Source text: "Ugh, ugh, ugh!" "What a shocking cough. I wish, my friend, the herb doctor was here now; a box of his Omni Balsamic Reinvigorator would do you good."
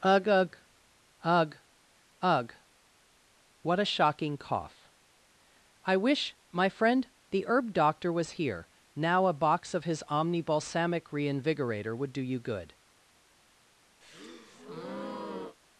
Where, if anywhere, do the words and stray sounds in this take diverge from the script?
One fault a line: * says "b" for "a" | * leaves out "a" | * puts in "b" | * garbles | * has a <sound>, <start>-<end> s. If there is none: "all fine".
* puts in "ugh"
* has a breath, 14.0-15.6 s